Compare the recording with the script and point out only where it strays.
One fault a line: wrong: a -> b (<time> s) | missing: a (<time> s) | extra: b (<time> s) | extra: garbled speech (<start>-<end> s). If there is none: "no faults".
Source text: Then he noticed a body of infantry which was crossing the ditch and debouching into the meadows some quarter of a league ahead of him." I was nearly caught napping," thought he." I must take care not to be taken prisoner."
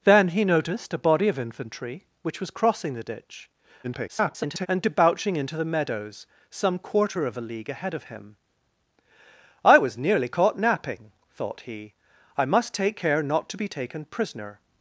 extra: garbled speech (3.8-4.7 s)